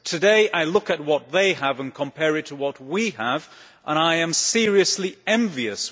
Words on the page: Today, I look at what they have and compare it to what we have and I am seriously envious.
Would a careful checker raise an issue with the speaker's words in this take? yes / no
no